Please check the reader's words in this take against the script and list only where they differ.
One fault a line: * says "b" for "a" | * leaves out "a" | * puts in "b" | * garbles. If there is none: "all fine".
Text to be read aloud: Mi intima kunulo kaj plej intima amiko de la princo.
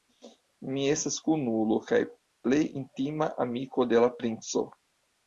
* says "estas" for "intima"